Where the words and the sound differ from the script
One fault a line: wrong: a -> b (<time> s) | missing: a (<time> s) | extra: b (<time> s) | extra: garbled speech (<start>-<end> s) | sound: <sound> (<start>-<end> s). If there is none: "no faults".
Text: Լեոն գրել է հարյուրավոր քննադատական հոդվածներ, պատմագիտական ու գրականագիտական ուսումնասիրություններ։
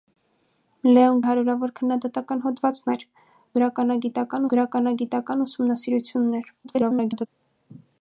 missing: գրել (1.2 s)
wrong: պատմագիտական -> գրականագիտական (3.6 s)
extra: garbled speech (6.6-7.3 s)